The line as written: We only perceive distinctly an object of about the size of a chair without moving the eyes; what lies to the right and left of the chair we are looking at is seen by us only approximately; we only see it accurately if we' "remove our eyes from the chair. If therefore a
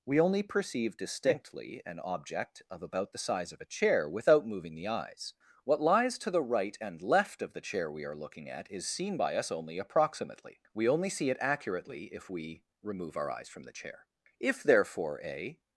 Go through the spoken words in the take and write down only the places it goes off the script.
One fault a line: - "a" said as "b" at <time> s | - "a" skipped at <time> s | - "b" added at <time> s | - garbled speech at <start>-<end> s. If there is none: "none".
none